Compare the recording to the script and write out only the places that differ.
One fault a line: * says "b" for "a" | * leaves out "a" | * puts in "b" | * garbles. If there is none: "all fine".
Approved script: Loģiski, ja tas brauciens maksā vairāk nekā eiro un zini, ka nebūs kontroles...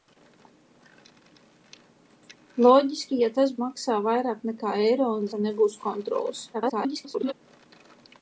* leaves out "brauciens"
* leaves out "zini"
* garbles